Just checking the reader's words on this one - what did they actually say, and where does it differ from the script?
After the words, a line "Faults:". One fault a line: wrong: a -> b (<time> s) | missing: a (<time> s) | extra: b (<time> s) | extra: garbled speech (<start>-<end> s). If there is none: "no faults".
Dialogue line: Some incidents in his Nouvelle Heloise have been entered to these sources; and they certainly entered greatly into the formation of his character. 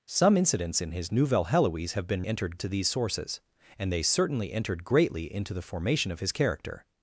Some incidents in his Nouvelle Heloise have been entered to these sources; and they certainly entered greatly into the formation of his character.
Faults:
no faults